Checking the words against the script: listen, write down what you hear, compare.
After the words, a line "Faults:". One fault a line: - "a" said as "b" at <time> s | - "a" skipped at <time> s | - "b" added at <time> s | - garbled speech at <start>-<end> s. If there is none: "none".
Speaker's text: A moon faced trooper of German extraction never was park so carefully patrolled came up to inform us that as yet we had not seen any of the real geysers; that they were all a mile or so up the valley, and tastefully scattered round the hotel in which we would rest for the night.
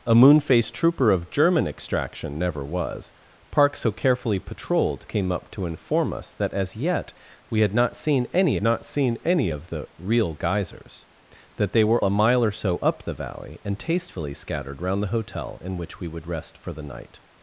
A moon faced trooper of German extraction never was park so carefully patrolled came up to inform us that as yet we had not seen any not seen any of the real geysers; that they were a mile or so up the valley, and tastefully scattered round the hotel in which we would rest for the night.
Faults:
- "not seen any" added at 8.6 s
- "all" skipped at 12.0 s